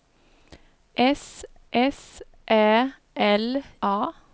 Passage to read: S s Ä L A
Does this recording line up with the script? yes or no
yes